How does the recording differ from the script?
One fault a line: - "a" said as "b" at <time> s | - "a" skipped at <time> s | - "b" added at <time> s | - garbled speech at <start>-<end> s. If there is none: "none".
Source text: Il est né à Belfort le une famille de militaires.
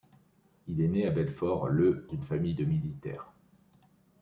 none